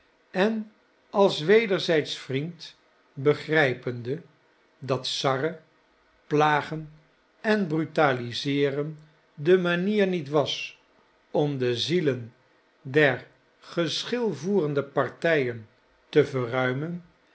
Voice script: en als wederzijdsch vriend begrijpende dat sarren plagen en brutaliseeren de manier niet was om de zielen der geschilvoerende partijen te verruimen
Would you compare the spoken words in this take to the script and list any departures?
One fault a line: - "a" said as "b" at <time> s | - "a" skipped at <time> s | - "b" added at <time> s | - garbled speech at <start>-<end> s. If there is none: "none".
none